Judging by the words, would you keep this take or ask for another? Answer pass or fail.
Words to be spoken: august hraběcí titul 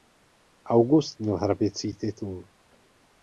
fail